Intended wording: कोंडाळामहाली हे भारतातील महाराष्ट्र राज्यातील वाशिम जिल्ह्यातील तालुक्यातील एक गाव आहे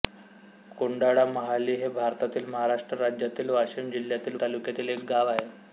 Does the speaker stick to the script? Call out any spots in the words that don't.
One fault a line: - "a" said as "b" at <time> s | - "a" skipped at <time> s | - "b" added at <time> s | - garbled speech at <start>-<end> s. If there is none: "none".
none